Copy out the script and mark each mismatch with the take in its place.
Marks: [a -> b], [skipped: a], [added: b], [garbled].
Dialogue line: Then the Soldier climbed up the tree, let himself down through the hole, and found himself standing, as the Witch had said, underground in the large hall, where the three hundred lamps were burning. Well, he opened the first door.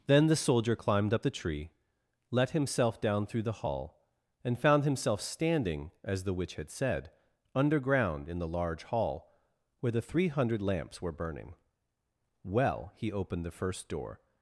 Then the Soldier climbed up the tree, let himself down through the [hole, -> hall] and found himself standing, as the Witch had said, underground in the large hall, where the three hundred lamps were burning. Well, he opened the first door.